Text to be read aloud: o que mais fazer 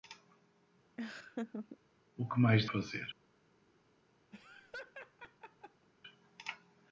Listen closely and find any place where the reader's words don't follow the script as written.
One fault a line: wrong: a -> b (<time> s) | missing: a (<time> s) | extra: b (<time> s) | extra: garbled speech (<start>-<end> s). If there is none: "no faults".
no faults